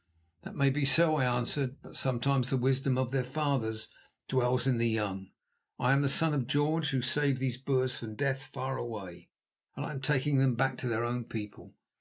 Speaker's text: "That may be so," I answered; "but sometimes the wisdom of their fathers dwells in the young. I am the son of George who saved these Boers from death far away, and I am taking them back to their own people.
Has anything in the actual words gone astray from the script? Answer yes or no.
no